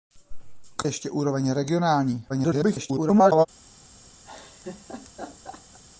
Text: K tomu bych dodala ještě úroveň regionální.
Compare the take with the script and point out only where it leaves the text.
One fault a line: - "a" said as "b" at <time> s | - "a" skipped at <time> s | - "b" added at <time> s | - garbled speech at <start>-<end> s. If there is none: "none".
- "tomu bych dodala" skipped at 0.8 s
- garbled speech at 2.3-3.5 s